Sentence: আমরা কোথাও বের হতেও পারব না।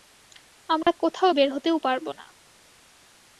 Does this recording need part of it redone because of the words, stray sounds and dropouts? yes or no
yes